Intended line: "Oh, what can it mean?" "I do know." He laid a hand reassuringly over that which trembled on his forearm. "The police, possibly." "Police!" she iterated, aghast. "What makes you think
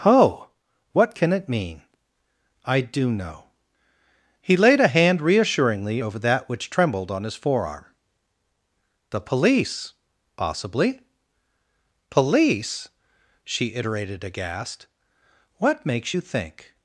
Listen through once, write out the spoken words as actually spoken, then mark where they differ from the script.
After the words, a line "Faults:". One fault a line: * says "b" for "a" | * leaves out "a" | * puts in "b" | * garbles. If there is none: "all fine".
"Oh, what can it mean?" "I do know." He laid a hand reassuringly over that which trembled on his forearm. "The police, possibly." "Police!" she iterated, aghast. "What makes you think
Faults:
all fine